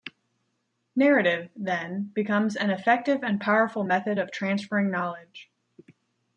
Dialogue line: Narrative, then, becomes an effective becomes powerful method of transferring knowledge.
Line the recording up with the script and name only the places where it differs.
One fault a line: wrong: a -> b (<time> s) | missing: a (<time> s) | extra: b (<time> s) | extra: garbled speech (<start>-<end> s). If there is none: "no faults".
wrong: becomes -> and (3.2 s)